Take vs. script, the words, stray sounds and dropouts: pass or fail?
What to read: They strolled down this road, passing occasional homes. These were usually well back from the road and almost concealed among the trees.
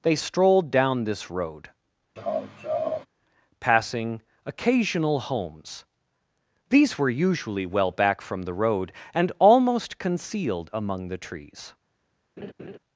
fail